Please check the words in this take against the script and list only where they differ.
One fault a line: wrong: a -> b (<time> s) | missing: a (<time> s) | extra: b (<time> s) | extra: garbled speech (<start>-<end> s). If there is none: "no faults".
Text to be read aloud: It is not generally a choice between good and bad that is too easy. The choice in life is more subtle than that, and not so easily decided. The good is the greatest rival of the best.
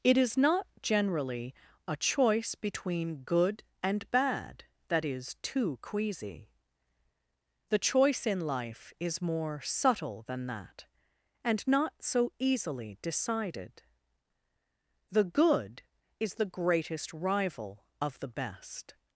wrong: easy -> queasy (5.8 s)